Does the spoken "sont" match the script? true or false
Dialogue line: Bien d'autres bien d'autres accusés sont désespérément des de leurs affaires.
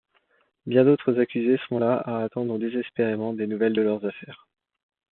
false